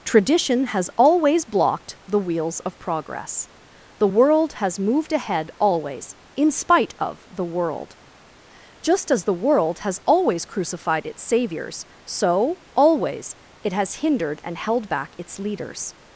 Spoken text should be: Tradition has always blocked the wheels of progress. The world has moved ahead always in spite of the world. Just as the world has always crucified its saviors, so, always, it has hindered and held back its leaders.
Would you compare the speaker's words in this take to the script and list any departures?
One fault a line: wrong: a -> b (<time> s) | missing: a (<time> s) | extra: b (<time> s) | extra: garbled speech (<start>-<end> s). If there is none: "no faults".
no faults